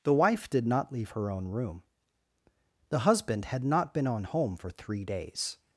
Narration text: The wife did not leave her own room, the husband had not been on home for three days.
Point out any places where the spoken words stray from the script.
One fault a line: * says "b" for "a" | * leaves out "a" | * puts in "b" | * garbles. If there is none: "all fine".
all fine